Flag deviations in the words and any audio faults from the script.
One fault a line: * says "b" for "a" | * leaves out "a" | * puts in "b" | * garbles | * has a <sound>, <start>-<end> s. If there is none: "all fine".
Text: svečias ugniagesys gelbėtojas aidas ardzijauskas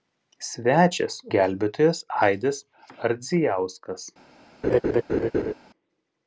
* leaves out "ugniagesys"
* has a laugh, 4.6-5.5 s